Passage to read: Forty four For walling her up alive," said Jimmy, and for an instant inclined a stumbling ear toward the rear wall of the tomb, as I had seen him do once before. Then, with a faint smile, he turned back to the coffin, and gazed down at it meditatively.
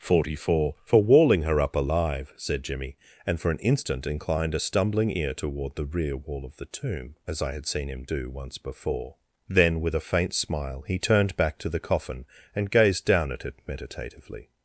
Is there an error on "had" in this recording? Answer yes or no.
no